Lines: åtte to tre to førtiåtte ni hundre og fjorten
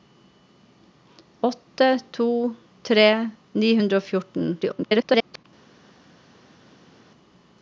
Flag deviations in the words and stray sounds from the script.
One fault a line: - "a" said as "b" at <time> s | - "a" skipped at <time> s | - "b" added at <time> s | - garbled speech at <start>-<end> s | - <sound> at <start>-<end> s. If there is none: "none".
- "to førtiåtte" skipped at 3.0 s
- garbled speech at 4.6-5.5 s